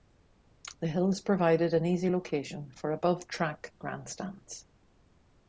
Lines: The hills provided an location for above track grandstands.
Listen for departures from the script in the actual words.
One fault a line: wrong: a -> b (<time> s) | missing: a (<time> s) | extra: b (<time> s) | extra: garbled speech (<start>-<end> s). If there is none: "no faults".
extra: easy (1.9 s)